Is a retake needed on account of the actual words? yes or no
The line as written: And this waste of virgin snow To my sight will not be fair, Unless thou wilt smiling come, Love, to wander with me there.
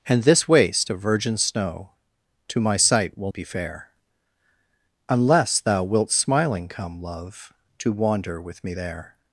yes